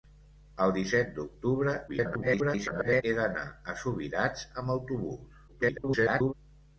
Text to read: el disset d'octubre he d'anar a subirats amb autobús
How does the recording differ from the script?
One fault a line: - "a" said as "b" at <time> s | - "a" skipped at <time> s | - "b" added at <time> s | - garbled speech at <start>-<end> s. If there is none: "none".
- garbled speech at 1.9-3.0 s
- garbled speech at 5.5-6.3 s